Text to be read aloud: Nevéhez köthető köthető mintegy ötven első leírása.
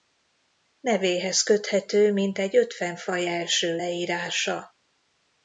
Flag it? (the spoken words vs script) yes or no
yes